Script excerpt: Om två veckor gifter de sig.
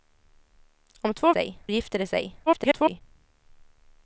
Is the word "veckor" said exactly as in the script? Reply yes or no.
no